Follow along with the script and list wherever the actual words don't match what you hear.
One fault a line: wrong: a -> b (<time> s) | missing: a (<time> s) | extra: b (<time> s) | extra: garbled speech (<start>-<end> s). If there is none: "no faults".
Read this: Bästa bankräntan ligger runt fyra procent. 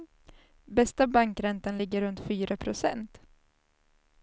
no faults